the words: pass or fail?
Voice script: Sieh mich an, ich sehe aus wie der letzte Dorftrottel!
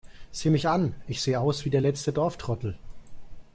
pass